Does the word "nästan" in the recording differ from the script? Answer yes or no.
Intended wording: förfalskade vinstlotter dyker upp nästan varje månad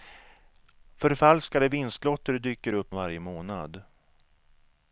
yes